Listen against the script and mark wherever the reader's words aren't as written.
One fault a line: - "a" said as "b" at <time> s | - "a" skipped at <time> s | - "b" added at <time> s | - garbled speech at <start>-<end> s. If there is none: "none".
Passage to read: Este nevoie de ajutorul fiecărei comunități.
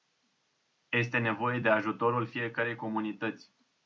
none